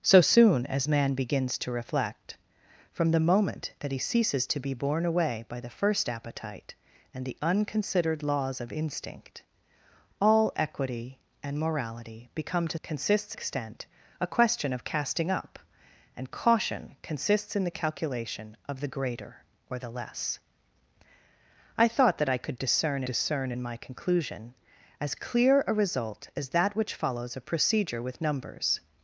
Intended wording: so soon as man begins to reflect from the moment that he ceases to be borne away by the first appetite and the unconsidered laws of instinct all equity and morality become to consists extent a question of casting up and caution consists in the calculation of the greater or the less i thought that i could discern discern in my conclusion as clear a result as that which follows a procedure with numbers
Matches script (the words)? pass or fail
pass